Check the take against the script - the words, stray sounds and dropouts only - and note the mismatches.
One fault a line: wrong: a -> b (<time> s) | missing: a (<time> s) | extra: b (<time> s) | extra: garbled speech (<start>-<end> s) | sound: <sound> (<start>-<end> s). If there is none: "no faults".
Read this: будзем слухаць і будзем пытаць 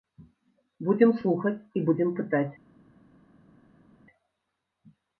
no faults